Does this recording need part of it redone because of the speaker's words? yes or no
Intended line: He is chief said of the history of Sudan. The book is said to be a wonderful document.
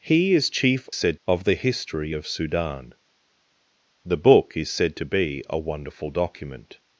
no